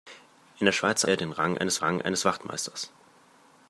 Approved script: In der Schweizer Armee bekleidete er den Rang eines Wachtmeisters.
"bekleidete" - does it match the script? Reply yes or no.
no